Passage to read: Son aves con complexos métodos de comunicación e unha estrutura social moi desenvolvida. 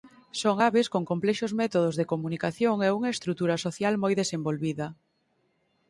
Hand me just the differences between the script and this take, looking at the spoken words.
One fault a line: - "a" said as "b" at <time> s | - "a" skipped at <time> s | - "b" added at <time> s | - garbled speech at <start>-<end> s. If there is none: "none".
none